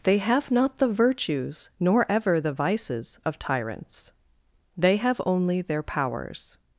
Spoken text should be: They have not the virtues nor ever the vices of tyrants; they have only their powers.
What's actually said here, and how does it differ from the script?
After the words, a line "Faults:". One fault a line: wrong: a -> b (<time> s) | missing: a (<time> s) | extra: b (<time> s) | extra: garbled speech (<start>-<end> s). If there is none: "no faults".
They have not the virtues nor ever the vices of tyrants; they have only their powers.
Faults:
no faults